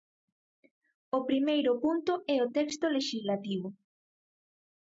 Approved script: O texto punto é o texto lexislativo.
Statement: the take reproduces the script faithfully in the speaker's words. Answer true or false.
false